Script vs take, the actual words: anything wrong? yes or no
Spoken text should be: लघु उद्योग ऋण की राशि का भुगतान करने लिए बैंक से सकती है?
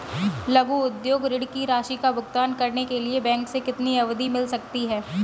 yes